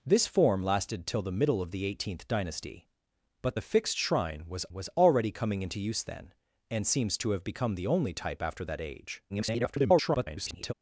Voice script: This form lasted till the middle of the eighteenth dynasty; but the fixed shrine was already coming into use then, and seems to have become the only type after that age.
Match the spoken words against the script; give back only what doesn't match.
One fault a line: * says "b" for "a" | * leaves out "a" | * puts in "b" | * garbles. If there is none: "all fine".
* puts in "was"
* garbles